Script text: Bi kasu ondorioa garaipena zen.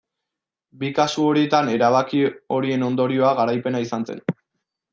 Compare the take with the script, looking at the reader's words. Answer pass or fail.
fail